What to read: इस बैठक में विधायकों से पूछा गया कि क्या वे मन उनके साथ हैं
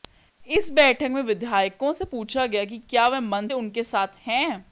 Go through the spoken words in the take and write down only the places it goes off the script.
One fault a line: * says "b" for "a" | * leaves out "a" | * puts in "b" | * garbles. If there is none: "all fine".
all fine